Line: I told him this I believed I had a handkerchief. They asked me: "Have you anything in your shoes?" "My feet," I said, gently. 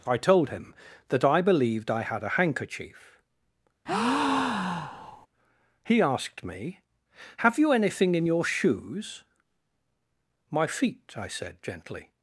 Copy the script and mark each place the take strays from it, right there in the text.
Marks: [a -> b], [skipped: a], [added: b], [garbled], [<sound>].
I told him [this -> that] I believed I had a handkerchief. [breath] [They -> He] asked me: "Have you anything in your shoes?" "My feet," I said, gently.